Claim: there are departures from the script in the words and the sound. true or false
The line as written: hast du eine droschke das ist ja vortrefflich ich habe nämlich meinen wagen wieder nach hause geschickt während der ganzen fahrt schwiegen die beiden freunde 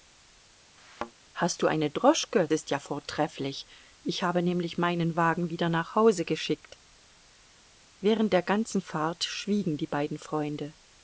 true